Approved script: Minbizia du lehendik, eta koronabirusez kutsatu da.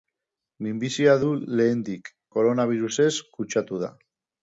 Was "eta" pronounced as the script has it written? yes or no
no